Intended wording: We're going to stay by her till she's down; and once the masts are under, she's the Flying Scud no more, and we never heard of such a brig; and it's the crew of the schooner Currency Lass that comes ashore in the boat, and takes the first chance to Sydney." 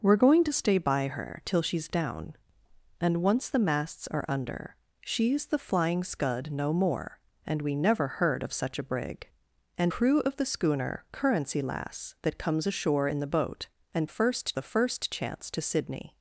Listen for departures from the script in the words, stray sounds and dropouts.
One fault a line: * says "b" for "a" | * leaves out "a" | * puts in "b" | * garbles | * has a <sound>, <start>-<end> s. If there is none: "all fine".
* leaves out "it's the"
* says "first" for "takes"